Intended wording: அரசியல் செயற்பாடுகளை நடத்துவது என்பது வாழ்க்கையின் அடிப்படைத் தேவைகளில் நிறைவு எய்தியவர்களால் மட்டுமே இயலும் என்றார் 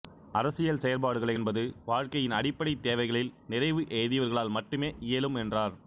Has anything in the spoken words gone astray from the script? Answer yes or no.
yes